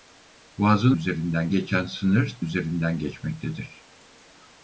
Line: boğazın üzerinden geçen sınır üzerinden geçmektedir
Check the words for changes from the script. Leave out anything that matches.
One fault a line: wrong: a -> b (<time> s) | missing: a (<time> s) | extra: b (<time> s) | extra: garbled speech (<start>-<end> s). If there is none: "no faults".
no faults